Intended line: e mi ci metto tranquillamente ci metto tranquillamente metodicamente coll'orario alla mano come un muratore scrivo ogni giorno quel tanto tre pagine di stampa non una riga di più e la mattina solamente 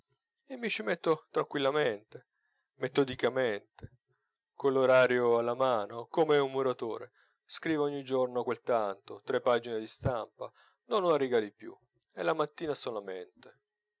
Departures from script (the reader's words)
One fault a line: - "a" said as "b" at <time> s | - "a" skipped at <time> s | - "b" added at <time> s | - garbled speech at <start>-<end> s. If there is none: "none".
- "ci metto tranquillamente" skipped at 2.3 s